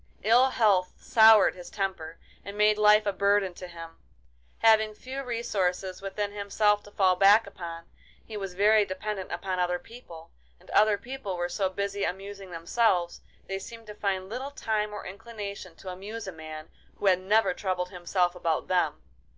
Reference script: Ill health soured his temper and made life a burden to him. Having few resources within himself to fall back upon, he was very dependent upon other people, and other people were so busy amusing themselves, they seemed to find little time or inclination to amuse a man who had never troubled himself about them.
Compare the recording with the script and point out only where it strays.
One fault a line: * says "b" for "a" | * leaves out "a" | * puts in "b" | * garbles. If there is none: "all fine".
all fine